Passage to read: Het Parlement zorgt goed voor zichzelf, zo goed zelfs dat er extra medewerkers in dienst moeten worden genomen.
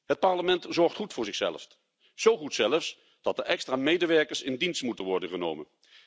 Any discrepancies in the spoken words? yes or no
no